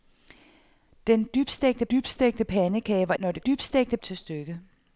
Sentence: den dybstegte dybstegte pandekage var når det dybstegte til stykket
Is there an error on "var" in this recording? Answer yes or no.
no